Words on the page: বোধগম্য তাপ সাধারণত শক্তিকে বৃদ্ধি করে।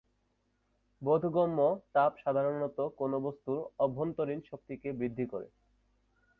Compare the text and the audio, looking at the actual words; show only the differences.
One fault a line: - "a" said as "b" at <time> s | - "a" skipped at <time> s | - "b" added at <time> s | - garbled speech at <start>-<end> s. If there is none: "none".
- "কোন বস্তুর অভ্যন্তরীণ" added at 3.0 s